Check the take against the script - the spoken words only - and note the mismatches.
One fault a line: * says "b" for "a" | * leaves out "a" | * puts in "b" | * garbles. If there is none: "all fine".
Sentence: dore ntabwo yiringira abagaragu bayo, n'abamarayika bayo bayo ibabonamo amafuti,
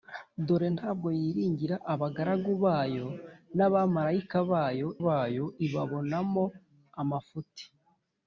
all fine